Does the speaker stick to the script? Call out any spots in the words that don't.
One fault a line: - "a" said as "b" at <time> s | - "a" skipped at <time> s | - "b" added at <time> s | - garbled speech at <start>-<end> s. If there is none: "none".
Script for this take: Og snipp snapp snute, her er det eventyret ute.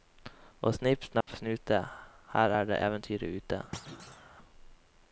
none